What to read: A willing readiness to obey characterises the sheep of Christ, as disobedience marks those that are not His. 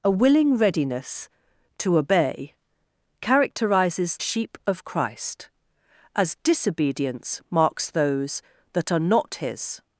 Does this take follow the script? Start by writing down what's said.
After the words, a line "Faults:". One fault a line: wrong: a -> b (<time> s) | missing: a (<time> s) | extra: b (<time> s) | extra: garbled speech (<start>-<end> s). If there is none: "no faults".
A willing readiness to obey characterises sheep of Christ, as disobedience marks those that are not His.
Faults:
missing: the (4.2 s)